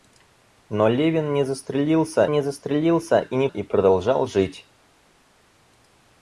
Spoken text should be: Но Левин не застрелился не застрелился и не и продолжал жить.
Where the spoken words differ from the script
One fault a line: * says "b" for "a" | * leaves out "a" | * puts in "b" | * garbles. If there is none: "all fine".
all fine